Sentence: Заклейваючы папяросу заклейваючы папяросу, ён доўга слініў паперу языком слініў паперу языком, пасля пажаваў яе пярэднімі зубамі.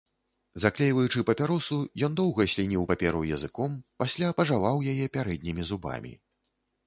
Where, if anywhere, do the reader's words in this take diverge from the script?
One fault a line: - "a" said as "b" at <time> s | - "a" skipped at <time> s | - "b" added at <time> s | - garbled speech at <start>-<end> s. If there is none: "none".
- "заклейваючы папяросу" skipped at 1.8 s
- "слініў паперу языком" skipped at 3.7 s